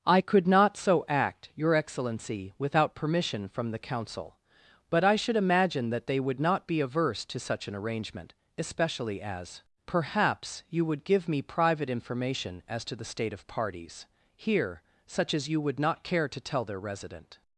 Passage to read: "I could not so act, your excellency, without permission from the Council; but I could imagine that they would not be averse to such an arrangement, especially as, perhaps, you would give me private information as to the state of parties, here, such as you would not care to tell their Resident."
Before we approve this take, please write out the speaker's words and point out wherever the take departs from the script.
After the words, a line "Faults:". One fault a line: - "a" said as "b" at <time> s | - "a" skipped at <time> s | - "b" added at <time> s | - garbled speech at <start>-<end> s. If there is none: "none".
"I could not so act, your excellency, without permission from the Council; but I should imagine that they would not be averse to such an arrangement, especially as, perhaps, you would give me private information as to the state of parties, here, such as you would not care to tell their Resident."
Faults:
- "could" said as "should" at 5.2 s